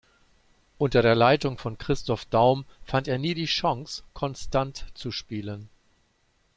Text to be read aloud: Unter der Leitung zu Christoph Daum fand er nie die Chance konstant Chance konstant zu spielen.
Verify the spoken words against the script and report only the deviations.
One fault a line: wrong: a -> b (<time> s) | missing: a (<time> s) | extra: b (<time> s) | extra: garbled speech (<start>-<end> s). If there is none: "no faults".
wrong: zu -> von (1.6 s)
missing: Chance konstant (4.8 s)